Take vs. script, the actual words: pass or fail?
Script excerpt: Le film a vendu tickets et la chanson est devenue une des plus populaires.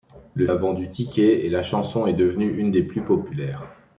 fail